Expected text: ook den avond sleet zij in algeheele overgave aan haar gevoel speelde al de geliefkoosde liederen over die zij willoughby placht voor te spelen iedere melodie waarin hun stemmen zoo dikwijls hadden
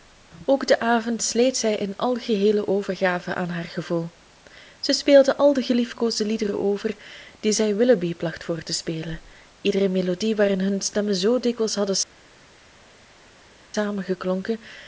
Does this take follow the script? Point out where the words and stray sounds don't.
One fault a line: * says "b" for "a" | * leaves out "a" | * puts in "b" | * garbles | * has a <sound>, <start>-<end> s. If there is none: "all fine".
* puts in "zij"